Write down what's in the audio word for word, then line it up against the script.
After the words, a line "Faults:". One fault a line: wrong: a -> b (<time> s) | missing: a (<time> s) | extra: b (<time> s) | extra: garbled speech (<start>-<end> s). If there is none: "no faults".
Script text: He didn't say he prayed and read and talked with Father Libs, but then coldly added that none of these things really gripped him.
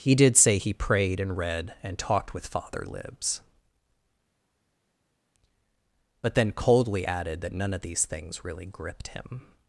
He did say he prayed and read and talked with Father Libs, but then coldly added that none of these things really gripped him.
Faults:
wrong: didn't -> did (0.1 s)